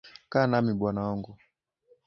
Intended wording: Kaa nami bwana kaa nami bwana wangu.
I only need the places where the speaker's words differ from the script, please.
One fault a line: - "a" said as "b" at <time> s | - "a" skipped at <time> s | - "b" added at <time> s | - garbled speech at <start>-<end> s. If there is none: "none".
- "kaa nami bwana" skipped at 1.0 s